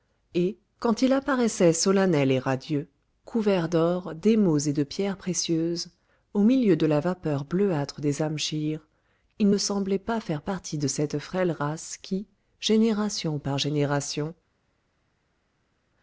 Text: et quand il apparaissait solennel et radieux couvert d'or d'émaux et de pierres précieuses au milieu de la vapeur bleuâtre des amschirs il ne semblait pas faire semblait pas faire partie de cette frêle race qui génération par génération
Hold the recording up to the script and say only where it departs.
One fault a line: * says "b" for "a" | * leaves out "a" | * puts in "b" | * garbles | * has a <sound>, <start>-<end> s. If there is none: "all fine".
* leaves out "semblait pas faire"